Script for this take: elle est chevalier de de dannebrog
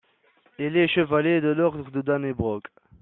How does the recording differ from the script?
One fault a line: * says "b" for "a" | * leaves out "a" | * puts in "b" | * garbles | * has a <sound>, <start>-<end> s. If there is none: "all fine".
* says "il" for "elle"
* puts in "l'ordre"